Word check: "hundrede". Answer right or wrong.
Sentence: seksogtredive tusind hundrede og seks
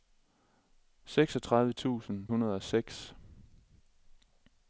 right